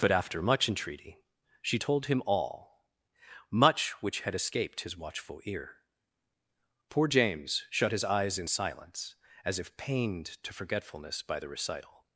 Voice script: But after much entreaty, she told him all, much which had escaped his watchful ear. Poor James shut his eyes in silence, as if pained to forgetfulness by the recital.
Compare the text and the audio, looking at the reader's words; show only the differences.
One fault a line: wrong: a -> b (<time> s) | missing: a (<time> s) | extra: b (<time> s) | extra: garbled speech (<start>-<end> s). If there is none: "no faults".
no faults